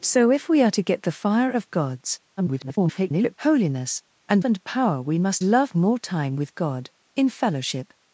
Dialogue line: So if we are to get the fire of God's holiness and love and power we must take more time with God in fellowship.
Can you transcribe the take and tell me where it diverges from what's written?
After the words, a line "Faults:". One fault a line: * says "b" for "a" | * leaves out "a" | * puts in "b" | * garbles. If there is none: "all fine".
So if we are to get the fire of God's [garbled] holiness and and power we must love more time with God in fellowship.
Faults:
* garbles
* leaves out "love"
* says "love" for "take"